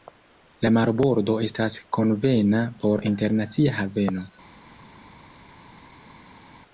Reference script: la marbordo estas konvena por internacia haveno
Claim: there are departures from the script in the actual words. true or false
false